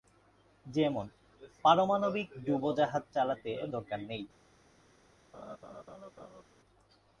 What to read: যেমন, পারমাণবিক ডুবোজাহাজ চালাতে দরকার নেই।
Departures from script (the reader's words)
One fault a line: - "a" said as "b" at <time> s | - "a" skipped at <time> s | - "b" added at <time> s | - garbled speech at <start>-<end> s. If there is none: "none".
none